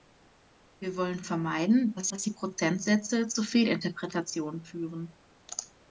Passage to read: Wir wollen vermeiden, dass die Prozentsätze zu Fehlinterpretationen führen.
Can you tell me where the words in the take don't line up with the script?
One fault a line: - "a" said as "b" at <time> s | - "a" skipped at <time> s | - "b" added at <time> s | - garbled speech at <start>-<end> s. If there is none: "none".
- "dass" added at 2.1 s